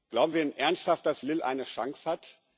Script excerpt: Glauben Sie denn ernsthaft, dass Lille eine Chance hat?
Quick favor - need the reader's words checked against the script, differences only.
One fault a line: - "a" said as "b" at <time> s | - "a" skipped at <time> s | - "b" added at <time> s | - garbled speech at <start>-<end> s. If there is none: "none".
none